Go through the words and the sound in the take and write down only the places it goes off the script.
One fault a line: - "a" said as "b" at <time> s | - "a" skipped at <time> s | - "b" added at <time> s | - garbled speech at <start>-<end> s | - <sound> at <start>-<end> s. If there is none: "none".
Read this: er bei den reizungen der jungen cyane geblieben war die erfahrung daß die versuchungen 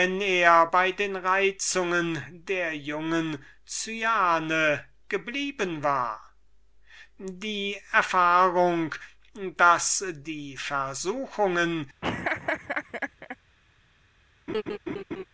- laugh at 12.0-13.4 s
- laugh at 14.5-15.2 s